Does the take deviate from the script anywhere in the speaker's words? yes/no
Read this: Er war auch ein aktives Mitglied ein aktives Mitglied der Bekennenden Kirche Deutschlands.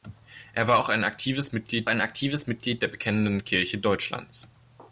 no